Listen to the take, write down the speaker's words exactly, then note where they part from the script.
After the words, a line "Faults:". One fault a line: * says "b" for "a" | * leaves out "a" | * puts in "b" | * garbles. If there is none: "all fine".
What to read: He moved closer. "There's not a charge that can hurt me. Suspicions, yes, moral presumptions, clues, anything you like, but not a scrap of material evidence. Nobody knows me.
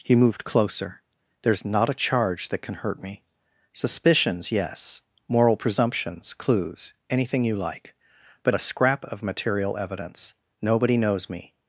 He moved closer. "There's not a charge that can hurt me. Suspicions, yes, moral presumptions, clues, anything you like, but a scrap of material evidence. Nobody knows me.
Faults:
* leaves out "not"